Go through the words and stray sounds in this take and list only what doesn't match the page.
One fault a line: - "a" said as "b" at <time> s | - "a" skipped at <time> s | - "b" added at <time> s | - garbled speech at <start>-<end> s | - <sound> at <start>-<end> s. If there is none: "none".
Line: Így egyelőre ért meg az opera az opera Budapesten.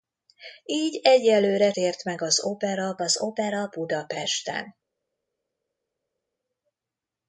none